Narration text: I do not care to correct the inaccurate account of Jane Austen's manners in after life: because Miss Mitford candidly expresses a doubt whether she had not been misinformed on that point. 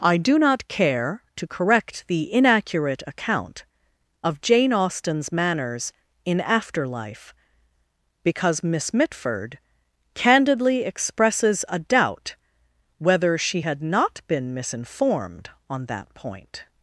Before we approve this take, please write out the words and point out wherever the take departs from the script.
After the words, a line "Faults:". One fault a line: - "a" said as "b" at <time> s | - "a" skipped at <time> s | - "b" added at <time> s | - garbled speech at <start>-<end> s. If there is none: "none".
I do not care to correct the inaccurate account of Jane Austen's manners in after life: because Miss Mitford candidly expresses a doubt whether she had not been misinformed on that point.
Faults:
none